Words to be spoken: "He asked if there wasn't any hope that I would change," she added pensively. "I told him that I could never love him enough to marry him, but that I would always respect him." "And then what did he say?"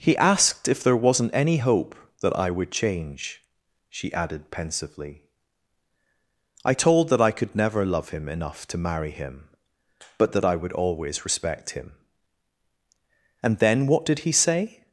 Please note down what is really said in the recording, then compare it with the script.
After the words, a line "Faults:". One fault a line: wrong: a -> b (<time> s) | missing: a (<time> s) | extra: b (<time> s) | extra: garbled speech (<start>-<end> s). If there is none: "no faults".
"He asked if there wasn't any hope that I would change," she added pensively. "I told that I could never love him enough to marry him, but that I would always respect him." "And then what did he say?"
Faults:
missing: him (7.1 s)